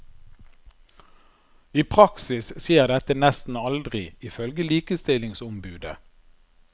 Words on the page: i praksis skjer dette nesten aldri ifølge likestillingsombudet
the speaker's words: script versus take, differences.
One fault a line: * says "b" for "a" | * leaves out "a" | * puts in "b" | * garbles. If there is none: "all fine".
all fine